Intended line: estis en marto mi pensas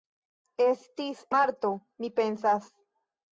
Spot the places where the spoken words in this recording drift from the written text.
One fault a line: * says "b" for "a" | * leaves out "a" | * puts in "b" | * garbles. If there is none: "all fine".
* leaves out "en"